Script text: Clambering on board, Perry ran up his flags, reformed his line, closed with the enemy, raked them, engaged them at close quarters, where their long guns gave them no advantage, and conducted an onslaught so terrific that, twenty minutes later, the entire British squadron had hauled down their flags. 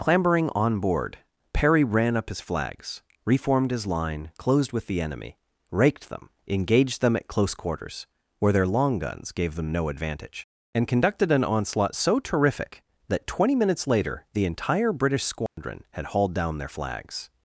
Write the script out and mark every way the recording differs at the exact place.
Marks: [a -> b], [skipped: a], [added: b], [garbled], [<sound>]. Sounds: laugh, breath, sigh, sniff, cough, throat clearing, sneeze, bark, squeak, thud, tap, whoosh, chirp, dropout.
Clambering on board, Perry ran up his flags, reformed his line, closed with the enemy, raked them, engaged them at close quarters, where their long guns gave them no advantage, and conducted an onslaught so terrific that, twenty minutes later, the entire British squadron [dropout] had hauled down their flags.